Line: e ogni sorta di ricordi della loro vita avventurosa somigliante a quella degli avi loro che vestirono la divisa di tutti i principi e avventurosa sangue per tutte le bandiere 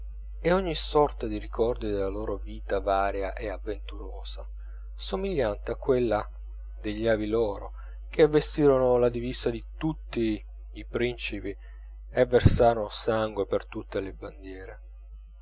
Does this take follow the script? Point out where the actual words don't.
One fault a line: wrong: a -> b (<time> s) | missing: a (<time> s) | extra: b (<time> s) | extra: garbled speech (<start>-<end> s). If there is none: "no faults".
extra: varia e (2.8 s)
wrong: avventurosa -> versarono (12.2 s)